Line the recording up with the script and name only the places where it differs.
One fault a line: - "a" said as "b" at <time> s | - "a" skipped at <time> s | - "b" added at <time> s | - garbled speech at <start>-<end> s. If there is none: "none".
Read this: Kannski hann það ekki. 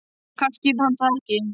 none